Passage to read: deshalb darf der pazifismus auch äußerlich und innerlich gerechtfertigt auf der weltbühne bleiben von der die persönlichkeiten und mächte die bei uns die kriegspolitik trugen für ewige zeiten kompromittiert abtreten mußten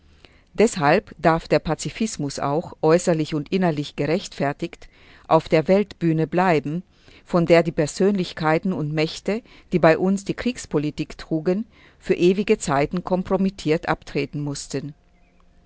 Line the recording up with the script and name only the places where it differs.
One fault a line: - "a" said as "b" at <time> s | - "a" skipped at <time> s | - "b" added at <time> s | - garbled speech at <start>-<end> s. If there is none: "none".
none